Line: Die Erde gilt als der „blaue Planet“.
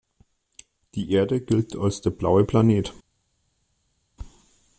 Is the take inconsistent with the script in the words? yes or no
no